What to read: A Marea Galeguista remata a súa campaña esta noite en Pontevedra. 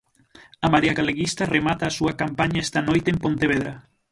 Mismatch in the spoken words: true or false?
false